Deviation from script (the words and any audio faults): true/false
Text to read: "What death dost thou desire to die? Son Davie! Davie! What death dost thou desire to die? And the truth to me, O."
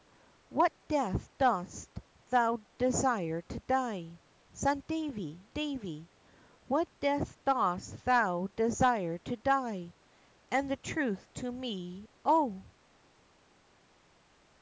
false